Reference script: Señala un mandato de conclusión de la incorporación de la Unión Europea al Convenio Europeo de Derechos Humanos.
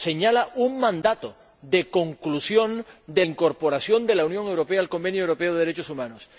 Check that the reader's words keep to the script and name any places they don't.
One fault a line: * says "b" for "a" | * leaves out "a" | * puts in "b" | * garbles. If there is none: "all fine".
* leaves out "la"